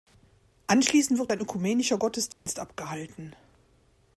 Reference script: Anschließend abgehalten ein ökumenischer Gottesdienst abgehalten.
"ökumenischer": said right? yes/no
yes